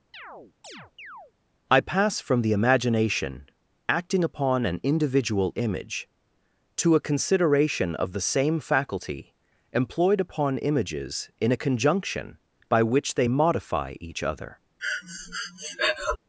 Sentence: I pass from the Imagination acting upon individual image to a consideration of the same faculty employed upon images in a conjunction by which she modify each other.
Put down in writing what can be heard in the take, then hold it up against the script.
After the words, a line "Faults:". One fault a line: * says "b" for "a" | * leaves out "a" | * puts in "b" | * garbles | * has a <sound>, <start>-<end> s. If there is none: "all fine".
I pass from the Imagination acting upon an individual image to a consideration of the same faculty employed upon images in a conjunction by which they modify each other.
Faults:
* has a chirp, 0.1-1.3 s
* puts in "an"
* says "they" for "she"
* has a breath, 14.8-16.2 s